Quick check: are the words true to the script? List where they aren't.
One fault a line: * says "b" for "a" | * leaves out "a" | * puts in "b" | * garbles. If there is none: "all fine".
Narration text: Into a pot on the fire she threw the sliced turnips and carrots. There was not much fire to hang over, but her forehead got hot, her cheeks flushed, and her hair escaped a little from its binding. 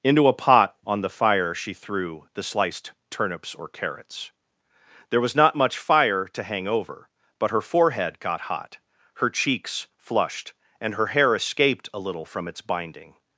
* says "or" for "and"